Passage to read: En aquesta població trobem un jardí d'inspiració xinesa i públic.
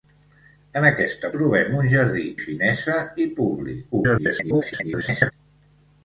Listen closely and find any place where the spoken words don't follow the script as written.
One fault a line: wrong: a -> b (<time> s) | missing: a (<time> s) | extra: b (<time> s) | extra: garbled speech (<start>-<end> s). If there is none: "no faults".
missing: població (1.3 s)
missing: d'inspiració (2.2 s)
extra: garbled speech (3.9-5.3 s)